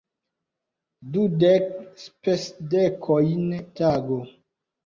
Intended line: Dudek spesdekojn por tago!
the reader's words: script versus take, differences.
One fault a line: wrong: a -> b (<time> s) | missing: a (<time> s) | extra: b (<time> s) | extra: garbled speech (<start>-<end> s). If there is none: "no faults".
missing: por (3.5 s)